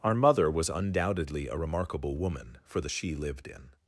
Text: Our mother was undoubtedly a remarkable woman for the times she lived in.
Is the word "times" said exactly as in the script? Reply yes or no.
no